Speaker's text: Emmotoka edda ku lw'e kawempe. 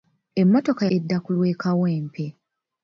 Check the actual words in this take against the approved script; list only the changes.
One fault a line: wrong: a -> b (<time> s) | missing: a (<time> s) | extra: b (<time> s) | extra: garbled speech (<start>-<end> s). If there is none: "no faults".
no faults